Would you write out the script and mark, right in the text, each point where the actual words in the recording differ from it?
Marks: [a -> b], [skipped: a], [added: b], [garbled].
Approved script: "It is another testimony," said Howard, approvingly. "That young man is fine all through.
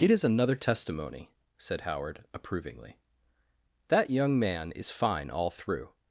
"It is another testimony," said Howard, approvingly. "That young man is fine all through.